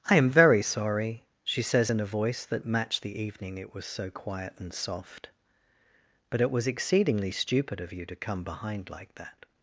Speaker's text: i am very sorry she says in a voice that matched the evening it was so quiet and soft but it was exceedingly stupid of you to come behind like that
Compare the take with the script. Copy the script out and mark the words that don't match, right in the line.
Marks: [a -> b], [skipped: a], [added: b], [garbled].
i am very sorry she says in a voice that matched the evening it was so quiet and soft but it was exceedingly stupid of you to come behind like that